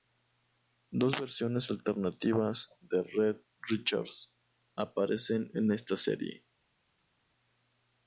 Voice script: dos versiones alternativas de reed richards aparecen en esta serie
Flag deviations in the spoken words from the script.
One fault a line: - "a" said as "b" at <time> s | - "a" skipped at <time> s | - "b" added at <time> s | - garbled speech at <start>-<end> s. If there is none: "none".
none